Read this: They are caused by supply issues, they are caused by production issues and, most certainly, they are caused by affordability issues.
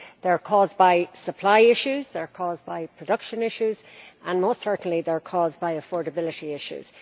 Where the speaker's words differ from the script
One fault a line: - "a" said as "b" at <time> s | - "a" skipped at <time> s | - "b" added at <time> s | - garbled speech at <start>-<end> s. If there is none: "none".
none